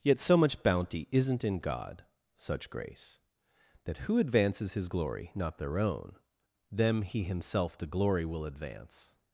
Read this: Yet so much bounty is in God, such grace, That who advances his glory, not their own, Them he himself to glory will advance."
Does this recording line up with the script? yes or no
no